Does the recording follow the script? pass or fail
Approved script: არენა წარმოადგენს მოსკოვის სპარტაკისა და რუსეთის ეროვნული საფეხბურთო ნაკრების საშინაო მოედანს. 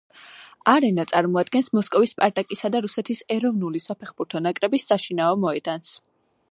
pass